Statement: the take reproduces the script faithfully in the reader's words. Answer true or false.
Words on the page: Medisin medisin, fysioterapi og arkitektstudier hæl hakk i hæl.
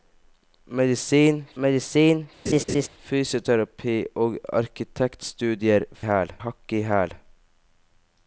true